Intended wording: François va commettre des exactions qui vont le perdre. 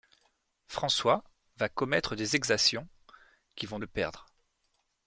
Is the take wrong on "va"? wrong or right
right